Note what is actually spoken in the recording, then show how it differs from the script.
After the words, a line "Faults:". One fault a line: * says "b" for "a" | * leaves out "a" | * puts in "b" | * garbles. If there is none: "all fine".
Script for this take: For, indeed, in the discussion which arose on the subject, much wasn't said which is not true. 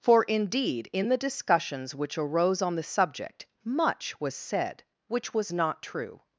For, indeed, in the discussions which arose on the subject, much was said which was not true.
Faults:
* says "discussions" for "discussion"
* says "was" for "wasn't"
* says "was" for "is"